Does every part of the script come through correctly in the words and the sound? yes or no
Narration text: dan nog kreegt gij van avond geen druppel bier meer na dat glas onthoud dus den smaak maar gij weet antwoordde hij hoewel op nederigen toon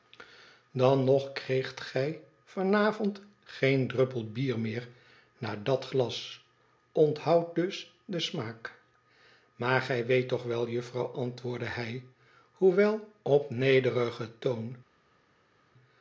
no